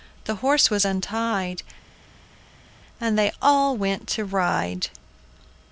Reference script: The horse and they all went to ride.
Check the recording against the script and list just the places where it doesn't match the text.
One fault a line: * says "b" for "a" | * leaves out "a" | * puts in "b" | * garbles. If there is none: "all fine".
* puts in "was untied"